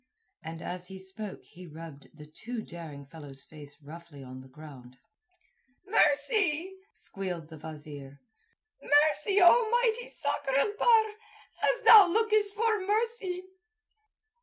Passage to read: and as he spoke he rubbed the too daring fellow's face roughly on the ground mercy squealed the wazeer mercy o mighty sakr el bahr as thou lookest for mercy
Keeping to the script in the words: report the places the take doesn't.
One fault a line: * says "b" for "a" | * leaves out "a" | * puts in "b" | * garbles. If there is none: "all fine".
all fine